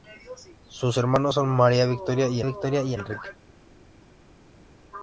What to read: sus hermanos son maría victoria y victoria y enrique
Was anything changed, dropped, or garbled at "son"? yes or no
no